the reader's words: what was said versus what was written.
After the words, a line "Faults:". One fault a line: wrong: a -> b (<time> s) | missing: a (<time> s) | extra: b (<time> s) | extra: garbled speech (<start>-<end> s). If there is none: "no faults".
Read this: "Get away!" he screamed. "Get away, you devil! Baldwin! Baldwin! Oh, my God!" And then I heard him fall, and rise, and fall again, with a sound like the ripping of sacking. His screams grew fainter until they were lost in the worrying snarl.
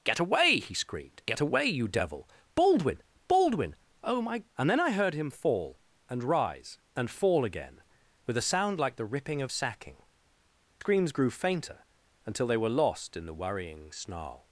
"Get away!" he screamed. "Get away, you devil! Baldwin! Baldwin! Oh, my!" And then I heard him fall, and rise, and fall again, with a sound like the ripping of sacking. Screams grew fainter until they were lost in the worrying snarl.
Faults:
missing: God (4.4 s)
missing: His (10.0 s)